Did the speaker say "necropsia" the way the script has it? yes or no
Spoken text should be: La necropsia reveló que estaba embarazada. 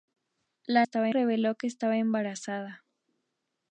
no